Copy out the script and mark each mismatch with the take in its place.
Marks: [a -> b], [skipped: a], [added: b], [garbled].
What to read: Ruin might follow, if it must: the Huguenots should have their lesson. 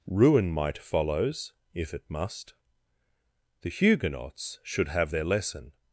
Ruin might [follow, -> follows] if it must: the Huguenots should have their lesson.